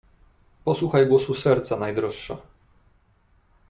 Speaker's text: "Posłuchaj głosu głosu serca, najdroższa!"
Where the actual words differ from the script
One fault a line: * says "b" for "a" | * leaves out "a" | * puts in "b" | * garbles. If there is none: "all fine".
* leaves out "głosu"